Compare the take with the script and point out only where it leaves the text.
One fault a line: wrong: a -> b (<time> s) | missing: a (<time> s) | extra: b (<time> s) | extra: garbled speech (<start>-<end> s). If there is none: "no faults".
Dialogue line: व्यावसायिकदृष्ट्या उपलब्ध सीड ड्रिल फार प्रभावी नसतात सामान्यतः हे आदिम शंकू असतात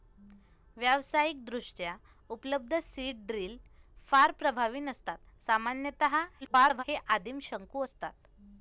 extra: garbled speech (6.4-6.8 s)